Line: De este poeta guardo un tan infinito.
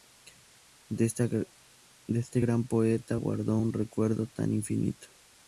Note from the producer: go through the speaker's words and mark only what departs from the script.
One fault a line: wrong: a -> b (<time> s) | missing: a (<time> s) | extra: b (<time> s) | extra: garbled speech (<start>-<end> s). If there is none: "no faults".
extra: gran (2.4 s)
extra: recuerdo (3.7 s)